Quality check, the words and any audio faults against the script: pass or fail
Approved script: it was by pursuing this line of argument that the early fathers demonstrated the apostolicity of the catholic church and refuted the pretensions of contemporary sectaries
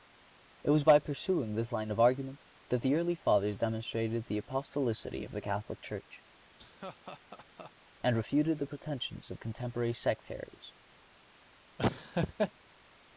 fail